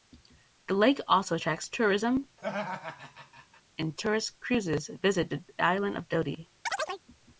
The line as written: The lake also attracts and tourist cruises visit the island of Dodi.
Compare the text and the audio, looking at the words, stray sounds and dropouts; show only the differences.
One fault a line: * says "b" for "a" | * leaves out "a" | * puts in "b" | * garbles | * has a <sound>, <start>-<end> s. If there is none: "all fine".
* puts in "tourism"
* has a laugh, 2.4-3.6 s
* has a chirp, 6.7-7.0 s